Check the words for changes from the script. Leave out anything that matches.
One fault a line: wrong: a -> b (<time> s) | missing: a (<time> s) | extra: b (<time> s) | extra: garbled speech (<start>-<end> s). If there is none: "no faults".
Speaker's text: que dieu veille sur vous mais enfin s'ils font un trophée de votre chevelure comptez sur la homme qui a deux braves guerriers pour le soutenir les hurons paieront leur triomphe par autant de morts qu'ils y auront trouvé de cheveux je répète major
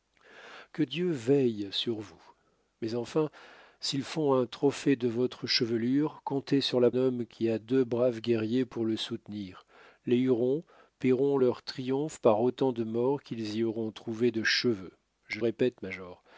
no faults